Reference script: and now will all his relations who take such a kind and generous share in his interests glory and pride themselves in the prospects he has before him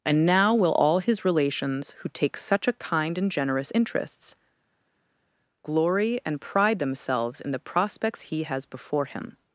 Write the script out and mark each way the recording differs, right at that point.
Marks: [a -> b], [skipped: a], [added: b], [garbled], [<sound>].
and now will all his relations who take such a kind and generous [skipped: share in his] interests glory and pride themselves in the prospects he has before him